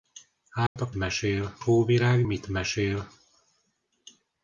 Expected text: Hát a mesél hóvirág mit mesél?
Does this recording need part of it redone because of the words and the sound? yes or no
yes